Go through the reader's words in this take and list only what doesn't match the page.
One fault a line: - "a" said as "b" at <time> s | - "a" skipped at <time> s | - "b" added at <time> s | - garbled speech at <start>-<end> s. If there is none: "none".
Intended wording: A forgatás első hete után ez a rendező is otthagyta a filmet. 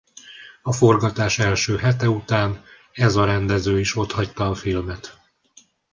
none